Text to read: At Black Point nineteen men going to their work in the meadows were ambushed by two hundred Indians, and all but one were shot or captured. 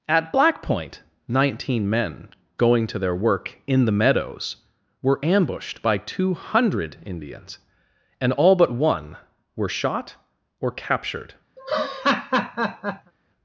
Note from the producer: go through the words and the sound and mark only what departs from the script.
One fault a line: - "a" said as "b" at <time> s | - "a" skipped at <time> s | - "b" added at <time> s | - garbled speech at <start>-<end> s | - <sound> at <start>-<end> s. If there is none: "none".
- laugh at 11.6-13.1 s